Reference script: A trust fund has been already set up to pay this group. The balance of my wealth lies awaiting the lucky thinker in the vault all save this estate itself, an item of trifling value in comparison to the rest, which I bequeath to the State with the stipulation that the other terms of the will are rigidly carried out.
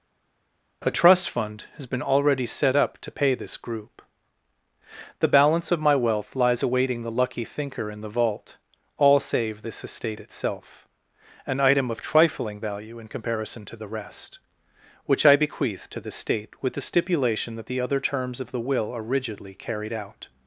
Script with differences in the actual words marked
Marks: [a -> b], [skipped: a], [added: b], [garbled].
A trust fund has been already set up to pay this group. The balance of my wealth lies awaiting the lucky thinker in the vault all save this estate itself, an item of trifling value in comparison to the rest, which I bequeath to the State with the stipulation that the other terms of the will are rigidly carried out.